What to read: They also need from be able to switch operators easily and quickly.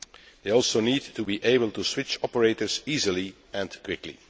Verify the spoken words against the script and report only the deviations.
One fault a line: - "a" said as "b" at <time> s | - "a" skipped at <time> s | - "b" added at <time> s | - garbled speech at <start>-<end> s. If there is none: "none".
- "from" said as "to" at 1.1 s